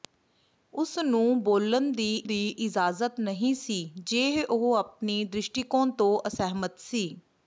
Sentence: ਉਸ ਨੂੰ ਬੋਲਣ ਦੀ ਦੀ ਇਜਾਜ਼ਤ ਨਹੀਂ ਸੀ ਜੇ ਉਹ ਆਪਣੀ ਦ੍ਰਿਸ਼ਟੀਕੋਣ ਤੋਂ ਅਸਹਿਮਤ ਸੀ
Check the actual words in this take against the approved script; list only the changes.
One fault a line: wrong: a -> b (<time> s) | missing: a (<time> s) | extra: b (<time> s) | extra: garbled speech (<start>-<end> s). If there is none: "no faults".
no faults